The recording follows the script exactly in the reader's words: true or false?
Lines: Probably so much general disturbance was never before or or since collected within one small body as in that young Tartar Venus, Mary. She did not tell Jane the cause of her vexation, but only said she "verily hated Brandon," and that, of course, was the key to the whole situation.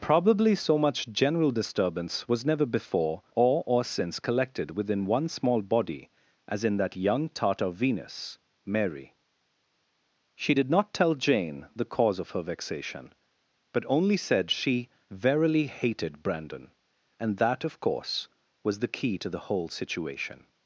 true